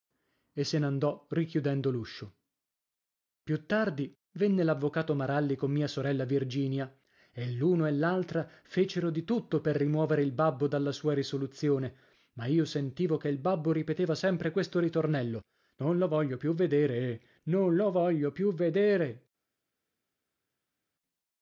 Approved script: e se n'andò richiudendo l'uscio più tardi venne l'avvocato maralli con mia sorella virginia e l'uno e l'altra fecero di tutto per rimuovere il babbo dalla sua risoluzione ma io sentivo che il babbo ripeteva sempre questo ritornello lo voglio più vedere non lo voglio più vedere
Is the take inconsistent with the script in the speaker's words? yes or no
yes